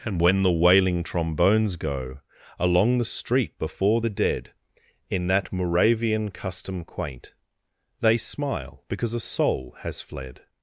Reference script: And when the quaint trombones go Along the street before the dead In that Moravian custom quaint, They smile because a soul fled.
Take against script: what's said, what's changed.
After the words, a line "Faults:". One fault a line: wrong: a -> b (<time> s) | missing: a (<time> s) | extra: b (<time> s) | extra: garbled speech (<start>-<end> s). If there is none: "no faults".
And when the wailing trombones go Along the street before the dead In that Moravian custom quaint, They smile because a soul has fled.
Faults:
wrong: quaint -> wailing (0.5 s)
extra: has (9.8 s)